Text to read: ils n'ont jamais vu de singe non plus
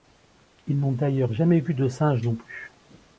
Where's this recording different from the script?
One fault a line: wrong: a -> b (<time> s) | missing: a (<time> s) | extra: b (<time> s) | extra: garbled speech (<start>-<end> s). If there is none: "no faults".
extra: d'ailleurs (0.9 s)